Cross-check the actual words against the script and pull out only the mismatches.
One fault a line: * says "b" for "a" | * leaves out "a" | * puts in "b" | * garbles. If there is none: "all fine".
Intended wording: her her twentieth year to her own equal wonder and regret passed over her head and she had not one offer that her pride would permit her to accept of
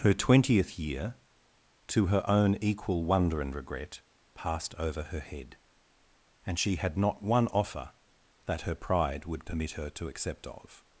* leaves out "her"